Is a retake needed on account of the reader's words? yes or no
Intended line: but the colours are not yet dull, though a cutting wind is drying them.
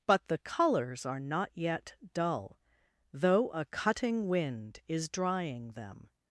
no